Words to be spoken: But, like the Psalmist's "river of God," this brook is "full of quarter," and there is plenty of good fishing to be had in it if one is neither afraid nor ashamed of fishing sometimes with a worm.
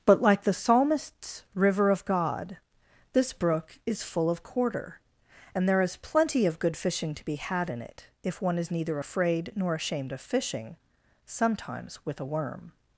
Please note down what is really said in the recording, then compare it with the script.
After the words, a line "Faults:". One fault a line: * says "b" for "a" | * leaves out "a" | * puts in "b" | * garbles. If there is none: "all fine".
But, like the Psalmist's "river of God," this brook is "full of quarter," and there is plenty of good fishing to be had in it if one is neither afraid nor ashamed of fishing sometimes with a worm.
Faults:
all fine